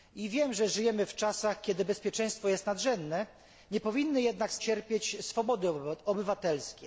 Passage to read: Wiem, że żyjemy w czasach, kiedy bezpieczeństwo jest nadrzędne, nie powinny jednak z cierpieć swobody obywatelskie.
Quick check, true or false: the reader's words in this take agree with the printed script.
true